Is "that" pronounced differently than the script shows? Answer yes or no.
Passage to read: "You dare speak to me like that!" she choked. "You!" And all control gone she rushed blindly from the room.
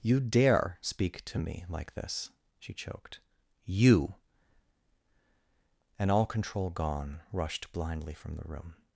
yes